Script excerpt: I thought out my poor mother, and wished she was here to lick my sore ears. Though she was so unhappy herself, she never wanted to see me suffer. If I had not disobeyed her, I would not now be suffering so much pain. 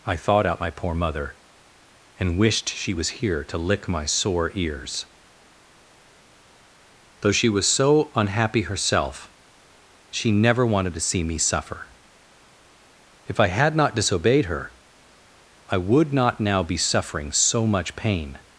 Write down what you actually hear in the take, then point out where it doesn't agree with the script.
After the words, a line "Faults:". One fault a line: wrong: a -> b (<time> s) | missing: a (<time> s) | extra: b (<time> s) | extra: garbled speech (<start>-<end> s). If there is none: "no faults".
I thought out my poor mother, and wished she was here to lick my sore ears. Though she was so unhappy herself, she never wanted to see me suffer. If I had not disobeyed her, I would not now be suffering so much pain.
Faults:
no faults